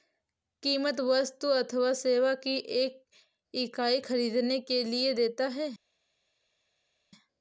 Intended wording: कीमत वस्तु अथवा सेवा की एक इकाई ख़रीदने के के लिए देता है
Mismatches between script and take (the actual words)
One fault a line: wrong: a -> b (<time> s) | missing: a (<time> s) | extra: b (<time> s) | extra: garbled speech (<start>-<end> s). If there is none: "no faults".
missing: के (4.8 s)